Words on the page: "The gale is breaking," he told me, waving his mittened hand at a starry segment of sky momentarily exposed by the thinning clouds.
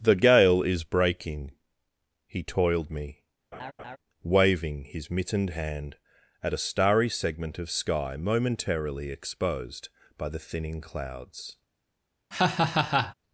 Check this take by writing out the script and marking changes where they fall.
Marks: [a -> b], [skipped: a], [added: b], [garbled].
"The gale is breaking," he [told -> toiled] me, waving his mittened hand at a starry segment of sky momentarily exposed by the thinning clouds.